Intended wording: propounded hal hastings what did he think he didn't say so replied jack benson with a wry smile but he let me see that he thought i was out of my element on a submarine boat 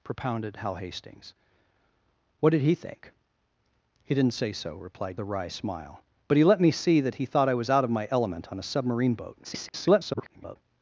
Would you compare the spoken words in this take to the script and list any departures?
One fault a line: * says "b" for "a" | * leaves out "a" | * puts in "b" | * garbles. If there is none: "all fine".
* leaves out "jack benson with"
* garbles